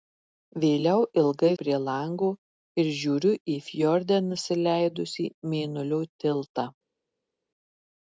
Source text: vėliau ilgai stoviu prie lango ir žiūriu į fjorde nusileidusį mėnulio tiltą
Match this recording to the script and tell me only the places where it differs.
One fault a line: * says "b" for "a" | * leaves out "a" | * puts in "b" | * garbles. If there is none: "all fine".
* leaves out "stoviu"